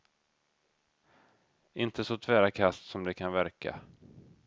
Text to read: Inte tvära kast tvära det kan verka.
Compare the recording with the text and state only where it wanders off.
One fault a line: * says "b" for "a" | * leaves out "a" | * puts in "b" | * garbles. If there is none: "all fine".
* puts in "så"
* says "som" for "tvära"